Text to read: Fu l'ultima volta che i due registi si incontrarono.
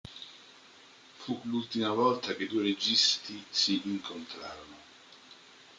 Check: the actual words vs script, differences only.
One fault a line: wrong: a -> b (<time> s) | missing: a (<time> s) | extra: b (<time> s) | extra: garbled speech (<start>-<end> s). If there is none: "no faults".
no faults